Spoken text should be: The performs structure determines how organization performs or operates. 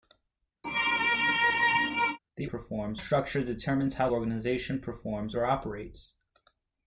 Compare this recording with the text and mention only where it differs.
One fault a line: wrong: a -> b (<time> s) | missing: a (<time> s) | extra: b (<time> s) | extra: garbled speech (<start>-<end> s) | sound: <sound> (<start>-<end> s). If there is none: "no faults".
sound: sneeze (0.6-2.2 s)